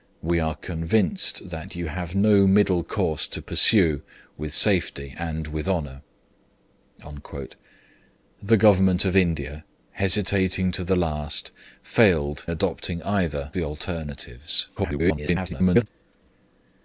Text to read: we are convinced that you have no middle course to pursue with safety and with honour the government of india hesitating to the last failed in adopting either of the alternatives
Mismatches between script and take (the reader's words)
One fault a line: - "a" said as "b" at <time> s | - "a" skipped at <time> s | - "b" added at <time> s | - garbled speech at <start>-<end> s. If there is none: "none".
- "in" skipped at 12.5 s
- "of" skipped at 13.5 s
- garbled speech at 14.8-15.9 s